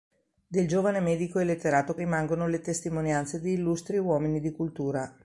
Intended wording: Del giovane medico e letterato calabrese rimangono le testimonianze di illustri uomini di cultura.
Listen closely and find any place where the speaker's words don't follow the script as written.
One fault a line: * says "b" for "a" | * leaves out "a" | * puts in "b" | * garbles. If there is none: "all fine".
* leaves out "calabrese"